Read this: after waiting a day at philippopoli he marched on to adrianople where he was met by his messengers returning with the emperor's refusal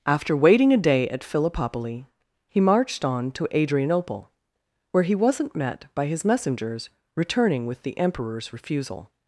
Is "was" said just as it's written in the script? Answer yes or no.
no